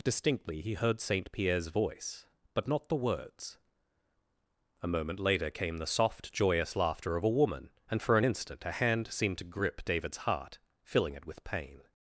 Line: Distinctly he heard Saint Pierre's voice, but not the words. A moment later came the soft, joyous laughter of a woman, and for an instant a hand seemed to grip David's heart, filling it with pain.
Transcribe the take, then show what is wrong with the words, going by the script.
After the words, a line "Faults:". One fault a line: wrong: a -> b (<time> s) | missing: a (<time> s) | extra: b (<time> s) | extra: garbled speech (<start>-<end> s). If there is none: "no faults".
Distinctly he heard Saint Pierre's voice, but not the words. A moment later came the soft, joyous laughter of a woman, and for an instant a hand seemed to grip David's heart, filling it with pain.
Faults:
no faults